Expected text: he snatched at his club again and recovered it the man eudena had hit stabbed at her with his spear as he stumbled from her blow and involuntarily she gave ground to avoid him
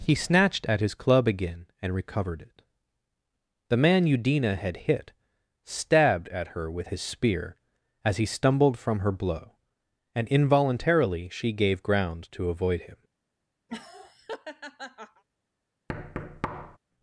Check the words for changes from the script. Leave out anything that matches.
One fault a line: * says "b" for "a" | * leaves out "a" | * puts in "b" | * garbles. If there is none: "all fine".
all fine